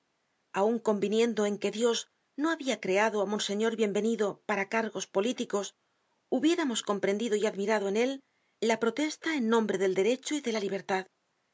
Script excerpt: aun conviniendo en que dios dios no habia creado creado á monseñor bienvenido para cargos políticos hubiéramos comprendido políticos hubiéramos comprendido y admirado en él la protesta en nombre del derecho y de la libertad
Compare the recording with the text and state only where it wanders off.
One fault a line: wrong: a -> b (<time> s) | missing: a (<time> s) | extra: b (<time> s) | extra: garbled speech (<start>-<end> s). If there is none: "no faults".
missing: dios (2.0 s)
missing: creado (3.2 s)
missing: políticos hubiéramos comprendido (7.3 s)